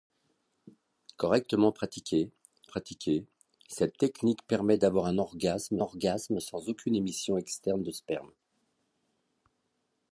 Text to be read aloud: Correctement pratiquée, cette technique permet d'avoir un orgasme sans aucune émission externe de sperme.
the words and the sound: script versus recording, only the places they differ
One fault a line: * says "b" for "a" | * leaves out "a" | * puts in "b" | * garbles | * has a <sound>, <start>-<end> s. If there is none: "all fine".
* puts in "pratiquée"
* puts in "orgasme"